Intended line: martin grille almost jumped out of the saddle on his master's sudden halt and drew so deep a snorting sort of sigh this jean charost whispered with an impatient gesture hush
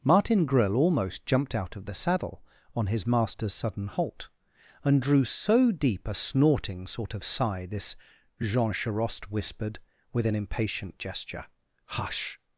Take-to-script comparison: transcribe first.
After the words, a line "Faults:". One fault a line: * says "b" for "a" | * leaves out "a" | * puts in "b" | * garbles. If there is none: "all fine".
martin grille almost jumped out of the saddle on his master's sudden halt and drew so deep a snorting sort of sigh this jean charost whispered with an impatient gesture hush
Faults:
all fine